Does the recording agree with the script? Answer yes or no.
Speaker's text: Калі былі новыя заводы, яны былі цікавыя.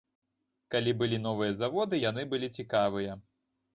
yes